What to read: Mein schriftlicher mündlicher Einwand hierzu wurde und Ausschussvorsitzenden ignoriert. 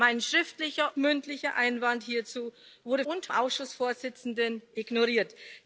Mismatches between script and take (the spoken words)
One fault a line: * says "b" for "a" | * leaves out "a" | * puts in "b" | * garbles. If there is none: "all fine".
all fine